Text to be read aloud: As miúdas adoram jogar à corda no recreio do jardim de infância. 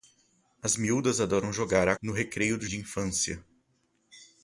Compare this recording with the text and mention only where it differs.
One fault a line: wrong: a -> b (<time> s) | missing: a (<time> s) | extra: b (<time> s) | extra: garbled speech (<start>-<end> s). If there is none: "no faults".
missing: corda (1.9 s)
missing: jardim (2.7 s)